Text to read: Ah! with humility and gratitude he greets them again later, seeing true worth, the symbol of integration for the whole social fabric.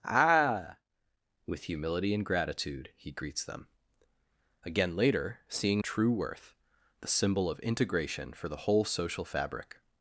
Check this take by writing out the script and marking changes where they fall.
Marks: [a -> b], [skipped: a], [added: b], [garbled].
Ah! with humility and gratitude he greets them again later, seeing true worth, the symbol of integration for the whole social fabric.